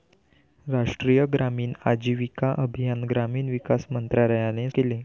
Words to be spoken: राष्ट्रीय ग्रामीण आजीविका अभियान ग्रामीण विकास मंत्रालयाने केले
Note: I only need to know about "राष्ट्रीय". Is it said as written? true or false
true